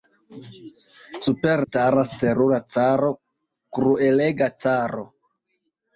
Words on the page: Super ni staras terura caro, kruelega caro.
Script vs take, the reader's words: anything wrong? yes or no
yes